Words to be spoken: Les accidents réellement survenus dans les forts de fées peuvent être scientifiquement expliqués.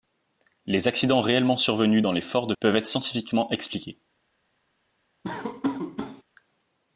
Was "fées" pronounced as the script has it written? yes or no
no